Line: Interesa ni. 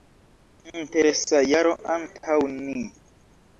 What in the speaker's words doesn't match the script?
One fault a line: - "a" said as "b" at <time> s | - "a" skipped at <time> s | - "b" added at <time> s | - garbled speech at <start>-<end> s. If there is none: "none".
- "jaro antaŭ" added at 1.5 s